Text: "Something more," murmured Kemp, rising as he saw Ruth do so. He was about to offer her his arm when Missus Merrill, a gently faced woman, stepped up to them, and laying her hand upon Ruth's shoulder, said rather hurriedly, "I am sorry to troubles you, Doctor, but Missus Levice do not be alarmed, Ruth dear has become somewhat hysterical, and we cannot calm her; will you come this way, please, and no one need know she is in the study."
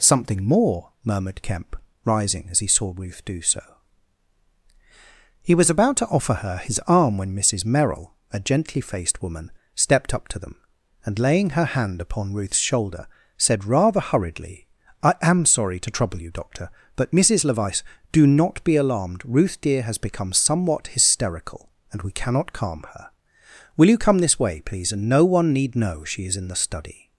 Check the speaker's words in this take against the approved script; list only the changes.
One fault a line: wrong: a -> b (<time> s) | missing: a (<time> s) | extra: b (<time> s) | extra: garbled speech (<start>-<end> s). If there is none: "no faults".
wrong: troubles -> trouble (15.9 s)